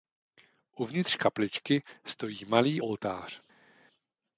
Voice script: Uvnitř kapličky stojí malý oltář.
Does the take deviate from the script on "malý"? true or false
false